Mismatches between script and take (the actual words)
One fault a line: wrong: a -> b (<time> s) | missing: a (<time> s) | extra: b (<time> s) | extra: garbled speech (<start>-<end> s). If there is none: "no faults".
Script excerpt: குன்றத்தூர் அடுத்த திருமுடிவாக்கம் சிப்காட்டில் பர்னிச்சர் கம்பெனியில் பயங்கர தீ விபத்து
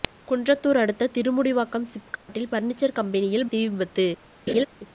missing: பயங்கர (3.5 s)